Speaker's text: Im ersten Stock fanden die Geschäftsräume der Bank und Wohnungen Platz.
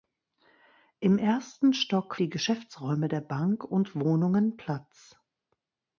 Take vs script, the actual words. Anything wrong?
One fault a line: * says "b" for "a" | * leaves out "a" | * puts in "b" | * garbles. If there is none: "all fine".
* leaves out "fanden"